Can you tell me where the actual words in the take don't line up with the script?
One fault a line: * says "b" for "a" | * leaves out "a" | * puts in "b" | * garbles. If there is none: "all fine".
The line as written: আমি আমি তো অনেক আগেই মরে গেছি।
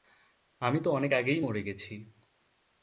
* leaves out "আমি"